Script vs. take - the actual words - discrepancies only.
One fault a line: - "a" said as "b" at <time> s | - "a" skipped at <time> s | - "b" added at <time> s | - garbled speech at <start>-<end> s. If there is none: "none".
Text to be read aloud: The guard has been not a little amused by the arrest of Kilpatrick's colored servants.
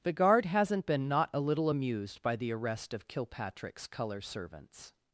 - "has" said as "hasn't" at 0.5 s
- "colored" said as "color" at 3.9 s